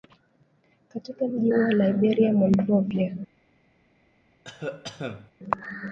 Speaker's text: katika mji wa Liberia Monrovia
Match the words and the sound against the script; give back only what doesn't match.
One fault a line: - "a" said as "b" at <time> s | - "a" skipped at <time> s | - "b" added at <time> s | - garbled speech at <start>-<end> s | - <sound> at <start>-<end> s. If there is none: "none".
- cough at 4.4-5.3 s